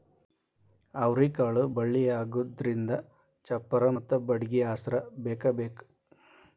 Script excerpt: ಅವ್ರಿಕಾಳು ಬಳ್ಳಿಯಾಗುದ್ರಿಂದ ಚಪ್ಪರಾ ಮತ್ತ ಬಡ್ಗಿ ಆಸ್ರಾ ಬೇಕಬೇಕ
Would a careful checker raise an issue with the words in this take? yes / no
no